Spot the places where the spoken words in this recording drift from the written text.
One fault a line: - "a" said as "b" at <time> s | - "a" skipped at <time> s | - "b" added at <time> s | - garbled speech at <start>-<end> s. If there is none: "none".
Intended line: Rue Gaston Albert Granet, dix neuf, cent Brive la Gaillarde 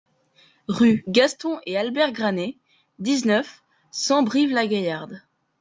- "et" added at 1.7 s